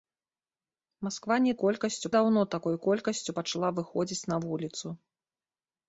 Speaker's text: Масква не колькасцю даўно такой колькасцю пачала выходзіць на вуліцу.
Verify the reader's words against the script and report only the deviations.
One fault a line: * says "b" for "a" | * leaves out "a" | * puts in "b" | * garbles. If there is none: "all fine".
all fine